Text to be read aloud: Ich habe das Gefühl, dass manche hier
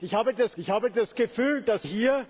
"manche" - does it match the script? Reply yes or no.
no